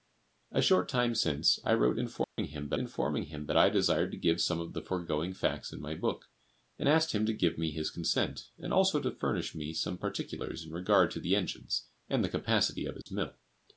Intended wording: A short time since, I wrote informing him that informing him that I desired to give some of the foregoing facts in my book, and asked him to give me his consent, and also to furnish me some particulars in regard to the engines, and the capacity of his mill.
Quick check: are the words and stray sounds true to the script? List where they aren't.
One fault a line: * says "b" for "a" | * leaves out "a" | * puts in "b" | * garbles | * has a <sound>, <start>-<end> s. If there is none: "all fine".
* has a dropout, 2.2-2.4 s
* has a dropout, 13.0-13.1 s